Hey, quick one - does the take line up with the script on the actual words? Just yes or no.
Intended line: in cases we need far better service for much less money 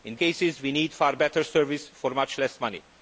yes